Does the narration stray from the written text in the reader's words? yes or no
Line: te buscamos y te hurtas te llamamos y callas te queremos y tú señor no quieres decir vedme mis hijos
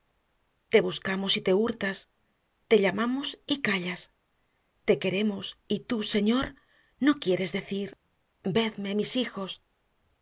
no